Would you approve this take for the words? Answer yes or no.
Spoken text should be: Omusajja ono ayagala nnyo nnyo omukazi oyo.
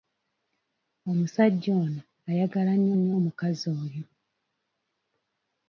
yes